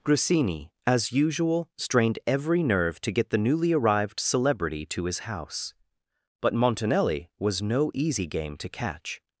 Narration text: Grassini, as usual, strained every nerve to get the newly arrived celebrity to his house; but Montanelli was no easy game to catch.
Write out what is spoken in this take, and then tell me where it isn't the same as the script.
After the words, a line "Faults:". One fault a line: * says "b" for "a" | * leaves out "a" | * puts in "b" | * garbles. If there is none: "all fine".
Grassini, as usual, strained every nerve to get the newly arrived celebrity to his house; but Montanelli was no easy game to catch.
Faults:
all fine